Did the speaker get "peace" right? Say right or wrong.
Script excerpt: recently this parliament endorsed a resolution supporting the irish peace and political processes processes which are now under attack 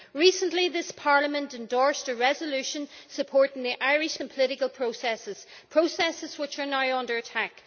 wrong